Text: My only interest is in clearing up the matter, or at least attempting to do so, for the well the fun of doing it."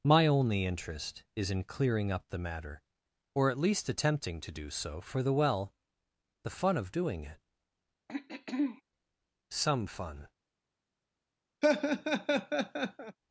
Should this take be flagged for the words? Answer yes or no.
yes